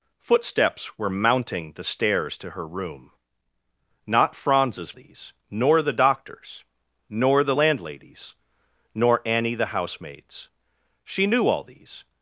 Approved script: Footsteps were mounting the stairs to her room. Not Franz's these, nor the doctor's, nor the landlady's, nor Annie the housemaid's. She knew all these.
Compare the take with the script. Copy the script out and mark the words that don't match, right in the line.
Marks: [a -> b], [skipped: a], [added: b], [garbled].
Footsteps were mounting the stairs to her room. Not Franz's these, nor the doctor's, nor the landlady's, nor Annie the housemaid's. She knew all these.